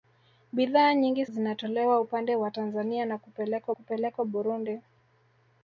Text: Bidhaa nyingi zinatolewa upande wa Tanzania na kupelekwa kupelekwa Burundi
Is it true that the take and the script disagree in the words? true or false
false